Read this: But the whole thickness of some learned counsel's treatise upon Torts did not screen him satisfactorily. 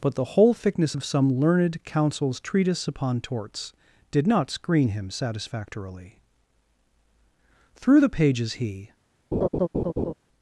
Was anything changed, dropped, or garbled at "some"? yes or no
no